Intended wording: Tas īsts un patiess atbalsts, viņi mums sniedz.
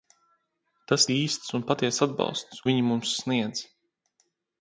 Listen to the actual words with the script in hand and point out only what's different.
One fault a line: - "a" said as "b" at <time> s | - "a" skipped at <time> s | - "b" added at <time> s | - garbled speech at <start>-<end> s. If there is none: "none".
none